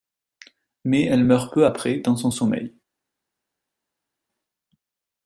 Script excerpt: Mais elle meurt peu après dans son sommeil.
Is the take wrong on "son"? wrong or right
right